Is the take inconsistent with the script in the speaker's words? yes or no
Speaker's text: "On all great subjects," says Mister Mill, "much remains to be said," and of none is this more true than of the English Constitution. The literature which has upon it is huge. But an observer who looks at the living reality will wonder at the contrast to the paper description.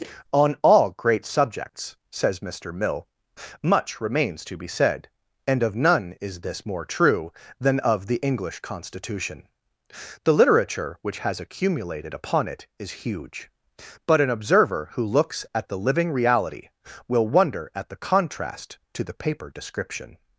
yes